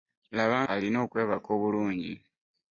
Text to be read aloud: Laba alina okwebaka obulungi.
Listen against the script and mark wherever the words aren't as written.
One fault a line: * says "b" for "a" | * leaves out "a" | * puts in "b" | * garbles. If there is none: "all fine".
all fine